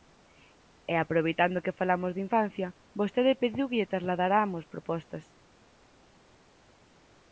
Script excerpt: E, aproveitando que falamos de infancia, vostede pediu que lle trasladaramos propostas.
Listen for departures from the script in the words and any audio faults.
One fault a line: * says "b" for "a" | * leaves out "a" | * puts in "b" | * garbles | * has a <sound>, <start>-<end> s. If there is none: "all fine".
all fine